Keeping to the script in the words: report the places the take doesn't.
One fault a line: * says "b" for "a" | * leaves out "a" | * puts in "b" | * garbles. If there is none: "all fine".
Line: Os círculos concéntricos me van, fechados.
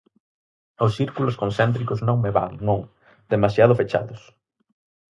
* puts in "non"
* puts in "non demasiado"